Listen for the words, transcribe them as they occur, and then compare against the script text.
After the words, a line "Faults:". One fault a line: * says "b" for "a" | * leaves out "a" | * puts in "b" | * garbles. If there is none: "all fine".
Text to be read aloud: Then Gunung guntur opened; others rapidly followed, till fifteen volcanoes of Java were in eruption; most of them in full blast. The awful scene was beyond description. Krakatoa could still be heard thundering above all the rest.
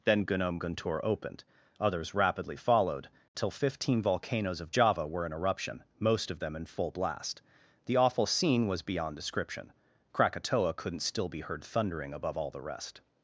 Then Gunung guntur opened; others rapidly followed, till fifteen volcanoes of Java were in eruption; most of them in full blast. The awful scene was beyond description. Krakatoa couldn't still be heard thundering above all the rest.
Faults:
* says "couldn't" for "could"